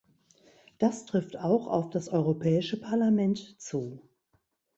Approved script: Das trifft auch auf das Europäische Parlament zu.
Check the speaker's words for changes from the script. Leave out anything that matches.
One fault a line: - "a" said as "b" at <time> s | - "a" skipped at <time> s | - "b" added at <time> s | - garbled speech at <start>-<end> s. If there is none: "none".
none